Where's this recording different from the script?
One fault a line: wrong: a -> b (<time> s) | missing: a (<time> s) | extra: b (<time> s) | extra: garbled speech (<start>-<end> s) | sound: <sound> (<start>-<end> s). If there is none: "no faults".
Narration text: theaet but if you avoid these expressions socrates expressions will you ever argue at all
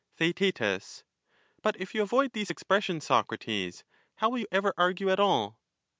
wrong: expressions -> how (4.2 s)